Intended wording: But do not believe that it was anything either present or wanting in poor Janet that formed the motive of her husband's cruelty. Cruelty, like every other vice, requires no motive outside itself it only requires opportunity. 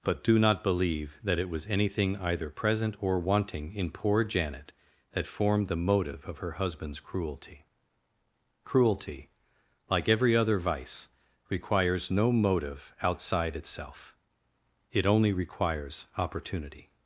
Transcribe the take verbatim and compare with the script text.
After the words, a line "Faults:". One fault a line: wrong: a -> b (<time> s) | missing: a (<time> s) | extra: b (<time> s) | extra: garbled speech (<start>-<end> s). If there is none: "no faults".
But do not believe that it was anything either present or wanting in poor Janet that formed the motive of her husband's cruelty. Cruelty, like every other vice, requires no motive outside itself it only requires opportunity.
Faults:
no faults